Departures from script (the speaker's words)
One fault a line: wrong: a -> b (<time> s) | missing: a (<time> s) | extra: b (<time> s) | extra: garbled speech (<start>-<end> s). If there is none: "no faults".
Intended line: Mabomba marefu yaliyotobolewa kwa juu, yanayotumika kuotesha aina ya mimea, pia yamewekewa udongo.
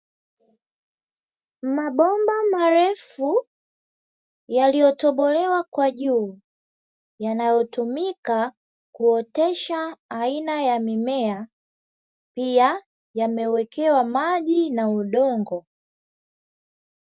extra: maji na (14.0 s)